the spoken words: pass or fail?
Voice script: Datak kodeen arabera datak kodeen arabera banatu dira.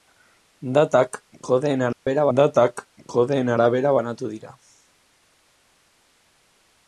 pass